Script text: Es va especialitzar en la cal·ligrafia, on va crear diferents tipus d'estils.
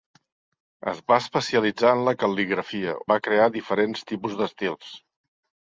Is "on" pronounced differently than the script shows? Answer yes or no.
yes